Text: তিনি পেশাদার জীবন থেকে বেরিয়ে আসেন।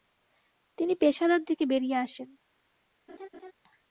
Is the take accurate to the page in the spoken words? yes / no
no